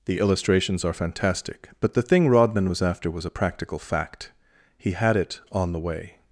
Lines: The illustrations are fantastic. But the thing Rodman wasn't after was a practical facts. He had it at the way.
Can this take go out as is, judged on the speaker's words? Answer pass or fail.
fail